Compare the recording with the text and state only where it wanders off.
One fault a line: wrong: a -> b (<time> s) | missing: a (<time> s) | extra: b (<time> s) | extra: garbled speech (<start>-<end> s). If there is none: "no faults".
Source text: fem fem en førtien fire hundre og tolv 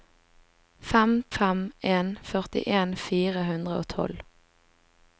no faults